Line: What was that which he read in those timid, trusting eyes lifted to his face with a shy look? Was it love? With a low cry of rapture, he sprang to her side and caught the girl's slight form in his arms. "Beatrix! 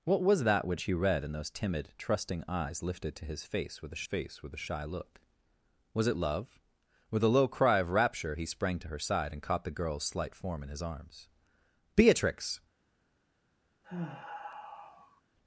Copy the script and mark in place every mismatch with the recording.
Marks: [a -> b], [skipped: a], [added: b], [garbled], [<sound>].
What was that which he read in those timid, trusting eyes lifted to his face with a [added: face with a] shy look? Was it love? With a low cry of rapture, he sprang to her side and caught the girl's slight form in his arms. "Beatrix! [sigh]